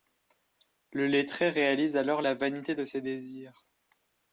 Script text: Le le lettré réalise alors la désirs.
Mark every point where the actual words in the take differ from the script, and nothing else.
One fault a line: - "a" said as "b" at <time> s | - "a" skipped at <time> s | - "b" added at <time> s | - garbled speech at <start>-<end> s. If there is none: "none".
- "le" skipped at 1.1 s
- "vanité de ses" added at 2.3 s